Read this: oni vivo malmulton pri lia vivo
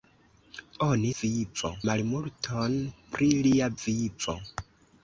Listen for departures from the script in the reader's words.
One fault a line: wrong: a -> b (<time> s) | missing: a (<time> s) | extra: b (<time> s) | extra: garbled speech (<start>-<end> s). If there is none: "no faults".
no faults